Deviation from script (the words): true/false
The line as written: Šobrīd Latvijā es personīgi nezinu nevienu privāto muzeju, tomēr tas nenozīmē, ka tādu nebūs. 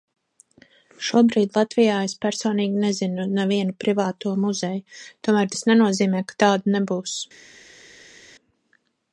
false